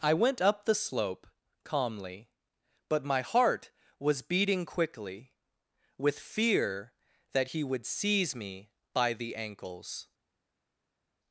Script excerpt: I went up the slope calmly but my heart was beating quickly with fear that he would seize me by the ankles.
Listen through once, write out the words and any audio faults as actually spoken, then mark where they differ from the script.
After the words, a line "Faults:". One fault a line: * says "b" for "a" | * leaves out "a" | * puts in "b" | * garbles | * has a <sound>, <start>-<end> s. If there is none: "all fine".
I went up the slope calmly but my heart was beating quickly with fear that he would seize me by the ankles.
Faults:
all fine